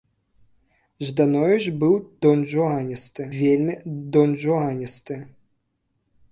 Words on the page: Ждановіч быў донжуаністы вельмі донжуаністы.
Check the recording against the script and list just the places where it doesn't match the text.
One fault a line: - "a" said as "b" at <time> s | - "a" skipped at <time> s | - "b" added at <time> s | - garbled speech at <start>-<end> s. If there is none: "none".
none